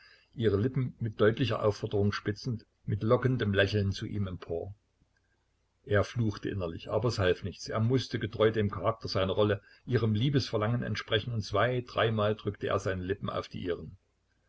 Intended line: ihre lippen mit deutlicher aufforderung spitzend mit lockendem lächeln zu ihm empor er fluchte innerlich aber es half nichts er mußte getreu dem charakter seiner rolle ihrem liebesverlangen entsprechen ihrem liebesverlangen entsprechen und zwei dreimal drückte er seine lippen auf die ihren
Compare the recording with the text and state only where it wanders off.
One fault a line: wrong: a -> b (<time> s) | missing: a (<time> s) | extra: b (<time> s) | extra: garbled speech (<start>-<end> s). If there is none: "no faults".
missing: ihrem liebesverlangen entsprechen (11.3 s)